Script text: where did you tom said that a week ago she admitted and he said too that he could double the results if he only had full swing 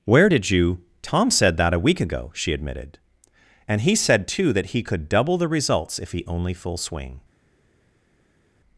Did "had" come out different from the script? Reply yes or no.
yes